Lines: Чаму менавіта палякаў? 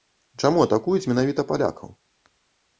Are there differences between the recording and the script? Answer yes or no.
yes